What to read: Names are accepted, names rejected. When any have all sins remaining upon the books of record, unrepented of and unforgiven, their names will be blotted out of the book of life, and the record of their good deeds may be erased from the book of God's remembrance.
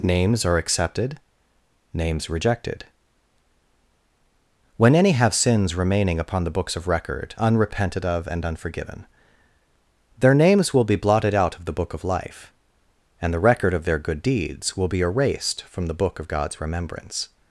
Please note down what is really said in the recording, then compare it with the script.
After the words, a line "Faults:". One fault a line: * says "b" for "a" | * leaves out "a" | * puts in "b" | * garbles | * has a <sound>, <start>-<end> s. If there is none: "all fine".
Names are accepted, names rejected. When any have sins remaining upon the books of record, unrepented of and unforgiven, their names will be blotted out of the book of life, and the record of their good deeds will be erased from the book of God's remembrance.
Faults:
* leaves out "all"
* says "will" for "may"